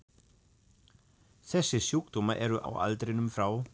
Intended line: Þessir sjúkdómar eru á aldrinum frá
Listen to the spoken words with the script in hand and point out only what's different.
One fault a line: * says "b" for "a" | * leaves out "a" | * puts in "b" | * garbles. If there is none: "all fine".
all fine